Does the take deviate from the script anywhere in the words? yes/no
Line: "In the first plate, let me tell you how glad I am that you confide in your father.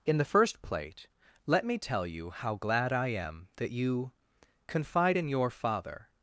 no